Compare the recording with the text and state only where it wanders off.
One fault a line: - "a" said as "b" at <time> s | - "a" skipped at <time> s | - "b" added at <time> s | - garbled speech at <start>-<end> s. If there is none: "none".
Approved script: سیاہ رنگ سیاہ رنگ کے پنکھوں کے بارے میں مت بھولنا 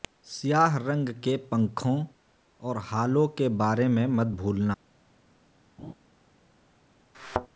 - "سیاہ رنگ کے پنکھوں" said as "کے پنکھوں اور ہالو" at 1.2 s